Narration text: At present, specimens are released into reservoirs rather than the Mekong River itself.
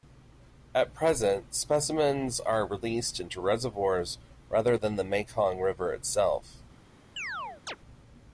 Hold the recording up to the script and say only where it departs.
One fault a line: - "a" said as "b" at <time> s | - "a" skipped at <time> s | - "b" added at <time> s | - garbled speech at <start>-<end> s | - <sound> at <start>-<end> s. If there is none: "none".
- chirp at 7.2-7.8 s